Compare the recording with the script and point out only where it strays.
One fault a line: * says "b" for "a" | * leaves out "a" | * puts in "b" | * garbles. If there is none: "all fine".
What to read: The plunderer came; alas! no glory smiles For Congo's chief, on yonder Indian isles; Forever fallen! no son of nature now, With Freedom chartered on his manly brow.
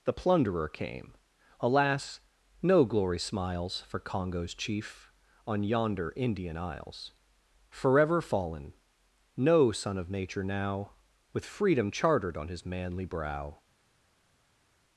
all fine